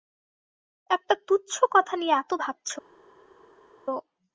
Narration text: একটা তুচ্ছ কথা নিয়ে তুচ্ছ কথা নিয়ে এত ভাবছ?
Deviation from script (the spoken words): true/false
true